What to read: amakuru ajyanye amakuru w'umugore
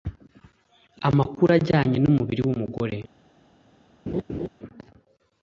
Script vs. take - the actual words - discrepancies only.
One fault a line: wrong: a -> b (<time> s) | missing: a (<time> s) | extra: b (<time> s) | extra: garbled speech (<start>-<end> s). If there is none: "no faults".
wrong: amakuru -> n'umubiri (2.0 s)